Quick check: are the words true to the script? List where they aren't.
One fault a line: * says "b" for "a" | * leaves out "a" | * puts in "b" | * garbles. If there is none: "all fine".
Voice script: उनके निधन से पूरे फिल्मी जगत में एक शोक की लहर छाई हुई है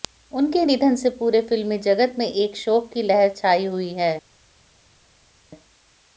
all fine